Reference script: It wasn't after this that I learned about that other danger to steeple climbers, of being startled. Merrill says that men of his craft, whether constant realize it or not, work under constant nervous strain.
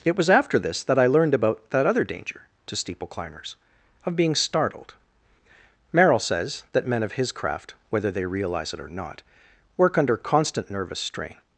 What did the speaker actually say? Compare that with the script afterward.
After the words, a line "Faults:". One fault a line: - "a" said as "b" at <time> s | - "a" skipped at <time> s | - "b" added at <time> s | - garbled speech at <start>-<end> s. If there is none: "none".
It was after this that I learned about that other danger to steeple climbers, of being startled. Merrill says that men of his craft, whether they realize it or not, work under constant nervous strain.
Faults:
- "wasn't" said as "was" at 0.1 s
- "constant" said as "they" at 8.1 s